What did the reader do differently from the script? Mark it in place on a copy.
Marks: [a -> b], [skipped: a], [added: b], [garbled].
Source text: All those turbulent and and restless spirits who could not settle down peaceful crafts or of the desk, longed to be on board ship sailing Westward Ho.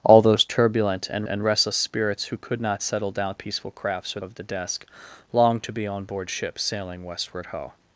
All those turbulent and and restless spirits who could not settle down peaceful crafts or of the desk, longed to be on board ship sailing Westward Ho.